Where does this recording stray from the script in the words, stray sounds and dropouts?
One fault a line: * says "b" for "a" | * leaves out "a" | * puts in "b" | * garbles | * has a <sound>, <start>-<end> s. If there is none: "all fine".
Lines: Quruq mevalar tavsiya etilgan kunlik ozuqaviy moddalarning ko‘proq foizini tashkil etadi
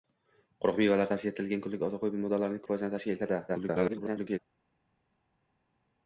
* leaves out "ko‘proq"
* garbles